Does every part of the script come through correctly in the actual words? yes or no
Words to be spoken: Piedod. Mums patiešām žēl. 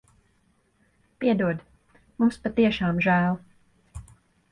yes